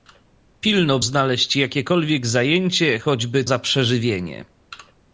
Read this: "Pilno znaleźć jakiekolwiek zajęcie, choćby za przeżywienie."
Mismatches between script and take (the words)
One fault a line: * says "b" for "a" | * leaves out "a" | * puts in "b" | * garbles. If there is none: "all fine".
all fine